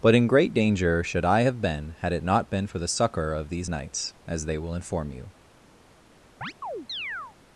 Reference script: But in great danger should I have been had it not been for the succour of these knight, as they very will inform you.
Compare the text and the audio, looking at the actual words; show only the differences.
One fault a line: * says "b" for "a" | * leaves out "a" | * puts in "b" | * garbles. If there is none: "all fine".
* says "knights" for "knight"
* leaves out "very"